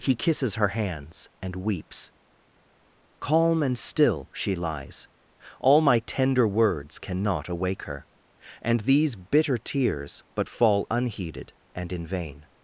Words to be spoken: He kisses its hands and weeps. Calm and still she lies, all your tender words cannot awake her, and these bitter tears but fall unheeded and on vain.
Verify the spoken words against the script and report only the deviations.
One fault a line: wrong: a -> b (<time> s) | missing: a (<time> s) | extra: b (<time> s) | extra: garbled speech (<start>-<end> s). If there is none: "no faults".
wrong: its -> her (0.6 s)
wrong: your -> my (5.8 s)
wrong: on -> in (11.9 s)